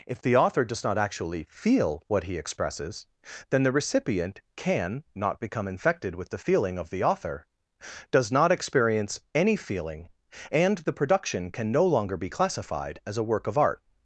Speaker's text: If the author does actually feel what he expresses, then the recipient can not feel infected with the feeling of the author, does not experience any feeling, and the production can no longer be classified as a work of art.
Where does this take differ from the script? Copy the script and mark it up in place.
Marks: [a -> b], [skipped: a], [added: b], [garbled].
If the author does [added: not] actually feel what he expresses, then the recipient can not [feel -> become] infected with the feeling of the author, does not experience any feeling, and the production can no longer be classified as a work of art.